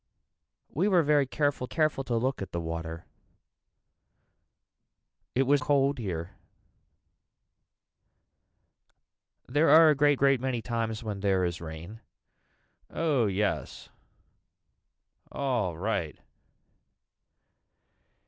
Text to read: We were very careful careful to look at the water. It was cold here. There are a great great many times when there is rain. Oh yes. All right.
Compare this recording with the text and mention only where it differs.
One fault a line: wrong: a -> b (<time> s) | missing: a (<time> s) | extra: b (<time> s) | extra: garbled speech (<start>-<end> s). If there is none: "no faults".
no faults